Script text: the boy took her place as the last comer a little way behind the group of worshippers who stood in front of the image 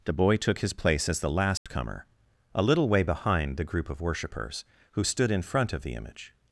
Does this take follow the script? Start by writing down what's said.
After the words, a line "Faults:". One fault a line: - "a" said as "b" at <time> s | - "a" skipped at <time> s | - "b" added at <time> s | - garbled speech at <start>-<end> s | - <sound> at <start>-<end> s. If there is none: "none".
the boy took his place as the last comer a little way behind the group of worshippers who stood in front of the image
Faults:
- "her" said as "his" at 0.6 s
- dropout at 1.6-1.7 s